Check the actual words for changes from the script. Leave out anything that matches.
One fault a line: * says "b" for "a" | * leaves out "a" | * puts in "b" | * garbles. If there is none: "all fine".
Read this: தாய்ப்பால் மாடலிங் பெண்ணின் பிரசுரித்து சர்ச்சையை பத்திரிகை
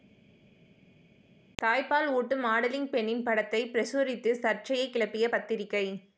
* puts in "ஊட்டும்"
* puts in "படத்தை"
* puts in "கிளப்பிய"